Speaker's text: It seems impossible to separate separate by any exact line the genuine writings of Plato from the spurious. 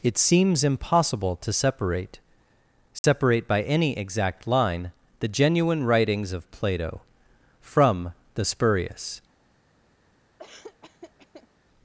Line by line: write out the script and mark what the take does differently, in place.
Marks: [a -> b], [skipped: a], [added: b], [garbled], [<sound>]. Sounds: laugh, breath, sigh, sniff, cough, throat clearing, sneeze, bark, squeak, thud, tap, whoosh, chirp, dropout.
It seems impossible to separate separate [dropout] by any exact line the genuine writings of Plato from the spurious. [laugh]